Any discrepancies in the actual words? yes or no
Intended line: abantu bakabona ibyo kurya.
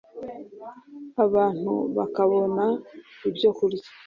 no